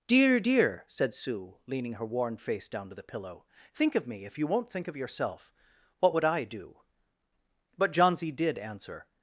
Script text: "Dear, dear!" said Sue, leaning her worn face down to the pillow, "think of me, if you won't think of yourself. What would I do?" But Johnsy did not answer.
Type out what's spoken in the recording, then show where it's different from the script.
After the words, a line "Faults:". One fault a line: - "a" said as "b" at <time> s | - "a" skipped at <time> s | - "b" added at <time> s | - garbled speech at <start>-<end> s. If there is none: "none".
"Dear, dear!" said Sue, leaning her worn face down to the pillow, "think of me, if you won't think of yourself. What would I do?" But Johnsy did answer.
Faults:
- "not" skipped at 8.6 s